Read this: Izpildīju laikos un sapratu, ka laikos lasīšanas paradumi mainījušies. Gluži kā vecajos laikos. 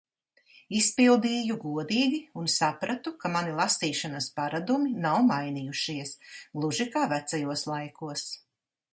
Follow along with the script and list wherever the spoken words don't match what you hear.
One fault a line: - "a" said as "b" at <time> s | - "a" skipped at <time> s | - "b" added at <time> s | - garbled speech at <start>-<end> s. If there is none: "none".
- "laikos" said as "godīgi" at 1.6 s
- "laikos" said as "mani" at 3.4 s
- "nav" added at 5.0 s